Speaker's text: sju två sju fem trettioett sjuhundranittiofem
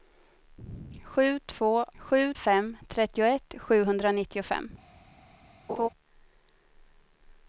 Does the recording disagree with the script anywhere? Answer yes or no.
no